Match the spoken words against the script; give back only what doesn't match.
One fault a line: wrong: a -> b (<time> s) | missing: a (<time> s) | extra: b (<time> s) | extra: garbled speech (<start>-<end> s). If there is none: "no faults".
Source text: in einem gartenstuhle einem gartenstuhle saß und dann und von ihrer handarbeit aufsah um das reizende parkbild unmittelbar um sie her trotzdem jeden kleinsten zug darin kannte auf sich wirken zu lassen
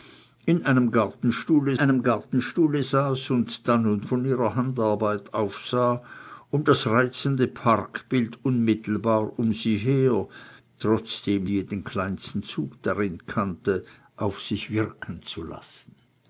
no faults